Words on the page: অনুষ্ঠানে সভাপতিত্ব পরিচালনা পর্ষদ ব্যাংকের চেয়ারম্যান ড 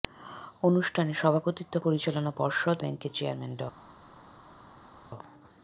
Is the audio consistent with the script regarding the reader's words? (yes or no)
yes